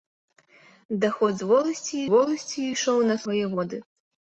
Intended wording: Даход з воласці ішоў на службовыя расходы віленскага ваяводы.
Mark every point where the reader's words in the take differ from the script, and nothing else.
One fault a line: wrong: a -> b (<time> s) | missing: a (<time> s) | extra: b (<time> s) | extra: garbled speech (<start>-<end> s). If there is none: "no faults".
extra: воласці (2.1 s)
missing: службовыя расходы віленскага (3.2 s)